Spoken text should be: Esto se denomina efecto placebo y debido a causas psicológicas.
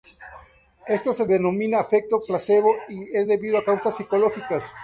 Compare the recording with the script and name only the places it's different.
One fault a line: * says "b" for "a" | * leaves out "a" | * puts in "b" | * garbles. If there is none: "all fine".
* puts in "es"